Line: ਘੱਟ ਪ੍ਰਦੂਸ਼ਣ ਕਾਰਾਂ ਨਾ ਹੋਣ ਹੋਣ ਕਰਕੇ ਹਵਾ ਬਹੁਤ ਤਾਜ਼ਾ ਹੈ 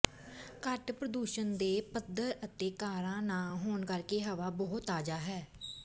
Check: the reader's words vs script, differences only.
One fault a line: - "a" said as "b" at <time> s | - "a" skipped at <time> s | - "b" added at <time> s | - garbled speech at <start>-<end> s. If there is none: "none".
- "ਦੇ ਪੱਧਰ ਅਤੇ" added at 1.6 s
- "ਹੋਣ" skipped at 3.8 s